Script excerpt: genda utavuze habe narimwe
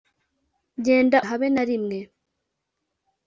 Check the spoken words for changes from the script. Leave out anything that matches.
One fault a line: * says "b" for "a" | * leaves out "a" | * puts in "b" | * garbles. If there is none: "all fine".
* leaves out "utavuze"